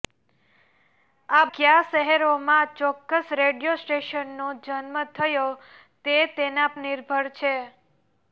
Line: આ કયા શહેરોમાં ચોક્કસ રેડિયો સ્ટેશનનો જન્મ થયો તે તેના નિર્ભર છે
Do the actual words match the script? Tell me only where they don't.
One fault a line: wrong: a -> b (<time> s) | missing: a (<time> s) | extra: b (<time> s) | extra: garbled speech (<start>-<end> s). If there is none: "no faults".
no faults